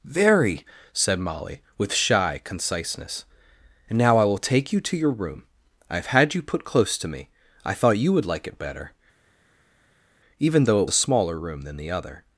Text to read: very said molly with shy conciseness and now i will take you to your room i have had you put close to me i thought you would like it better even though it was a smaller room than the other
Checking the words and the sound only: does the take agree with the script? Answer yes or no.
no